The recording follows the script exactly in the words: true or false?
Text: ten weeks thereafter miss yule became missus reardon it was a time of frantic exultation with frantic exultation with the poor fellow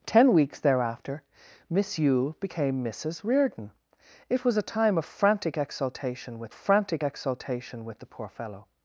true